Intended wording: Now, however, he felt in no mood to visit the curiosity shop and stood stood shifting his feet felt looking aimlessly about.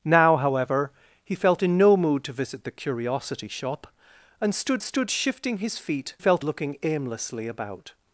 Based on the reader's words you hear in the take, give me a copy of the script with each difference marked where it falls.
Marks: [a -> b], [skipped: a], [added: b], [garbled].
Now, however, he felt in no mood to visit the curiosity shop and stood stood shifting his feet felt looking aimlessly about.